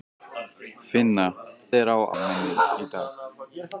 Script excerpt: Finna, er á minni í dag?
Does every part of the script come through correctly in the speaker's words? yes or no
yes